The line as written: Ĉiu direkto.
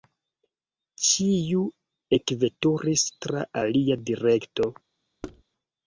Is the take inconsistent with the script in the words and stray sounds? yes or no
yes